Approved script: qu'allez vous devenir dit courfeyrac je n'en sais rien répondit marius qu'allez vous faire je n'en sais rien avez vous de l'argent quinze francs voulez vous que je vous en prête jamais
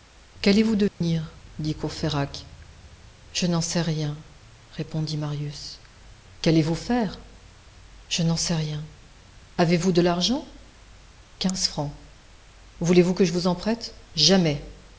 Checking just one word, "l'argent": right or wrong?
right